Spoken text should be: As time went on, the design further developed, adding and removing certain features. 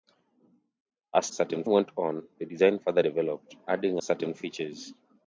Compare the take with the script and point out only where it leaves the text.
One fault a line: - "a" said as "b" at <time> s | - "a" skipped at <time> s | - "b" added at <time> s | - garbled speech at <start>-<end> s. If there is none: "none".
- "time" said as "certain" at 1.3 s
- "and removing" skipped at 4.0 s